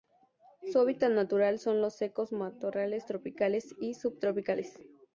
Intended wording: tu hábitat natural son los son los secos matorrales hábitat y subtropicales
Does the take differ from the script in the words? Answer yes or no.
yes